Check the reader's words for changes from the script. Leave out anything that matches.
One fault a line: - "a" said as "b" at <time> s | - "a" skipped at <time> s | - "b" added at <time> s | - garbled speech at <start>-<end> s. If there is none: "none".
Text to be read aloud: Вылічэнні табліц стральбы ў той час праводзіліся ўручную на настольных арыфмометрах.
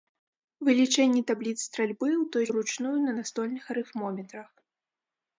- "час праводзіліся" skipped at 2.5 s